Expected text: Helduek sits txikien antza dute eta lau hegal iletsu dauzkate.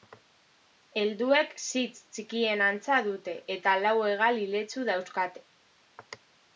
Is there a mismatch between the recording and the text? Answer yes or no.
no